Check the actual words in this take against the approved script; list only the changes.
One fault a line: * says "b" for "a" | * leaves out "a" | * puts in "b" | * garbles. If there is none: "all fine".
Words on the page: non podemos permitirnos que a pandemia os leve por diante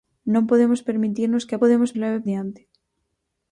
* says "podemos" for "pandemia"
* leaves out "por"